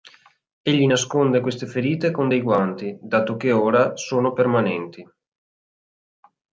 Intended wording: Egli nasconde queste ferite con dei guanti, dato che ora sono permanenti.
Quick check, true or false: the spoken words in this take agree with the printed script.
true